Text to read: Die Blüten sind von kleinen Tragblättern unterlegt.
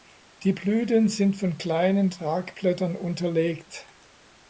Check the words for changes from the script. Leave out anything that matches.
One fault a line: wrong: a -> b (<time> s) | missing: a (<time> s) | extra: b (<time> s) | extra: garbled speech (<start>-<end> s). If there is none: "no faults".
no faults